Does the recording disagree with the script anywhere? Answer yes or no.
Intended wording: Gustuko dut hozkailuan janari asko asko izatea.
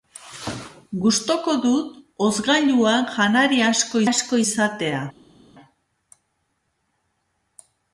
no